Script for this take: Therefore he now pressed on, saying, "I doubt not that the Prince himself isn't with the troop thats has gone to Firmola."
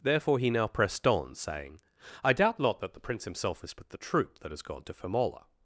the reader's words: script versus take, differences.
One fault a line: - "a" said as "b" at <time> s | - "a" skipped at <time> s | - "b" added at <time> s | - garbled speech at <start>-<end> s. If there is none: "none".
- "isn't" said as "is" at 3.6 s
- "thats" said as "that" at 4.4 s